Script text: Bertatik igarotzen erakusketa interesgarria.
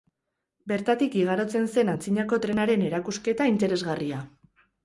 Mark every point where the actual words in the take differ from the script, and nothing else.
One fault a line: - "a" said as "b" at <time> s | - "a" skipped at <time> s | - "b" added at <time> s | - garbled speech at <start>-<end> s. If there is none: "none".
- "zen antzinako trenaren" added at 1.8 s